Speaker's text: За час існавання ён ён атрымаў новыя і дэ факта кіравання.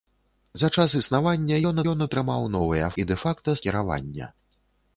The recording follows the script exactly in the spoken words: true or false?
true